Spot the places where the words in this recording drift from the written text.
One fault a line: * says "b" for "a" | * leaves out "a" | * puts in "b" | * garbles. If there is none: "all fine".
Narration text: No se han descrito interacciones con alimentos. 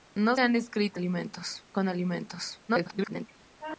* leaves out "se"
* says "alimentos" for "interacciones"
* garbles